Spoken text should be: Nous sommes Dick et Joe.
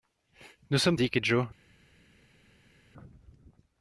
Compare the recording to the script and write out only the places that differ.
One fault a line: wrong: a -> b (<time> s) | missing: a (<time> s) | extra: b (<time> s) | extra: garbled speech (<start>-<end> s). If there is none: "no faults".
no faults